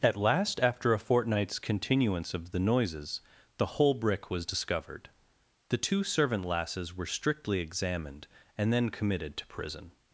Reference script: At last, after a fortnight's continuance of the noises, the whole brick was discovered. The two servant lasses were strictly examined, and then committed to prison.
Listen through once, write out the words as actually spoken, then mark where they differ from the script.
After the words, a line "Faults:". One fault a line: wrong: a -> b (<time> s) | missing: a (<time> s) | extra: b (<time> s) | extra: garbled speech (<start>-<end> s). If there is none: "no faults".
At last, after a fortnight's continuance of the noises, the whole brick was discovered. The two servant lasses were strictly examined, and then committed to prison.
Faults:
no faults